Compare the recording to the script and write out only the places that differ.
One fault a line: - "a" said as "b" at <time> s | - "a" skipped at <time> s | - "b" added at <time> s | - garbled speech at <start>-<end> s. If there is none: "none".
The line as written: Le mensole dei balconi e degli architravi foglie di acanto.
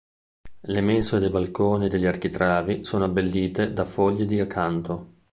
- "sono abbellite da" added at 2.9 s